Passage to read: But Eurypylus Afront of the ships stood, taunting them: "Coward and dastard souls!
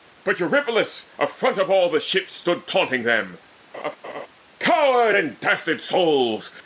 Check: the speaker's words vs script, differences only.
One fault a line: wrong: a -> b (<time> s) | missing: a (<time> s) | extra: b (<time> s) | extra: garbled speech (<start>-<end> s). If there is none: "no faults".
extra: all (1.7 s)